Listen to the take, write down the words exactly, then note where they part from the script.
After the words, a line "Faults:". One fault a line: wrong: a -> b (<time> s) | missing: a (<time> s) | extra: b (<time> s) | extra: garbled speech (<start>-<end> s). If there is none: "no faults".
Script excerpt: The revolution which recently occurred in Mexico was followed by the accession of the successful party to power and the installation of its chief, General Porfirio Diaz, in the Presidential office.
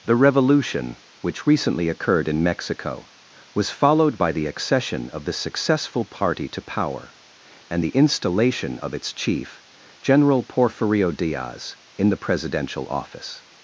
The revolution which recently occurred in Mexico was followed by the accession of the successful party to power and the installation of its chief, General Porfirio Diaz, in the Presidential office.
Faults:
no faults